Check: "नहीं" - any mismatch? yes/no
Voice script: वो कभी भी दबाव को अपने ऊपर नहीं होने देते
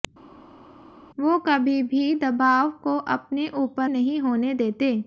no